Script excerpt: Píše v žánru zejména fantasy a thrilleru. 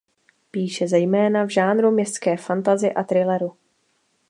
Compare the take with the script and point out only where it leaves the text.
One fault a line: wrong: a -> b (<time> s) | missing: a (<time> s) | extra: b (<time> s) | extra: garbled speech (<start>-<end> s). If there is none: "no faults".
extra: zejména (0.9 s)
wrong: zejména -> městské (1.9 s)